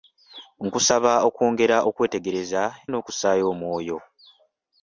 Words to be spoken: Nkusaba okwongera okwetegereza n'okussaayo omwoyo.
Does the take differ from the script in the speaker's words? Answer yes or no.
no